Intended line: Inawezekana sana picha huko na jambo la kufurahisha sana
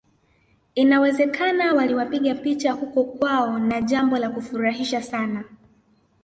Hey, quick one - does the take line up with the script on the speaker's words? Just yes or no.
no